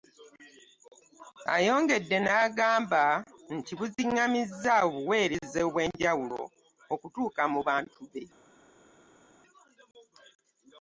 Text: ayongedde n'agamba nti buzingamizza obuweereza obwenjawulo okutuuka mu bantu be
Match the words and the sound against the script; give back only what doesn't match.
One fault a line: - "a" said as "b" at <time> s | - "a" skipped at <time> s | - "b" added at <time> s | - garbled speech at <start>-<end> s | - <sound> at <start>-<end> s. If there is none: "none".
none